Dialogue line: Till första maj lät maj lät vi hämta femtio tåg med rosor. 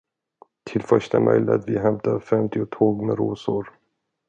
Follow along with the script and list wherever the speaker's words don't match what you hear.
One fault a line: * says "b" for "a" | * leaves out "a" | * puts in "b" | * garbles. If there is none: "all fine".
* leaves out "maj lät"